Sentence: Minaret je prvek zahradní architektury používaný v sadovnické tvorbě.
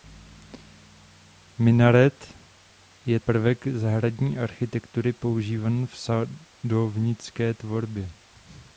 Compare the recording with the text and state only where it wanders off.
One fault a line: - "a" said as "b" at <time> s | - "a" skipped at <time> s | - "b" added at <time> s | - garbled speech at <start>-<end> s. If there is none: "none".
none